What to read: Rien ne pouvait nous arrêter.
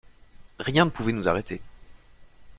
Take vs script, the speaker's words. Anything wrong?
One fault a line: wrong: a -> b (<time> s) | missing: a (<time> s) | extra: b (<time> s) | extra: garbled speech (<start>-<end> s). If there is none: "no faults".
no faults